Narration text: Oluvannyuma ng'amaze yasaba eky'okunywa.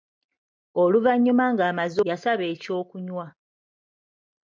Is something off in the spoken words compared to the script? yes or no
no